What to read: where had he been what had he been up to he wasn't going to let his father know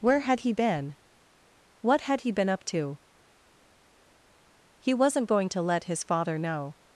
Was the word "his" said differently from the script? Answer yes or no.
no